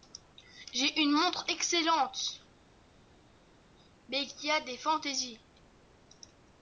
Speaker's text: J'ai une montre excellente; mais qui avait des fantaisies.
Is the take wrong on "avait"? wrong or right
wrong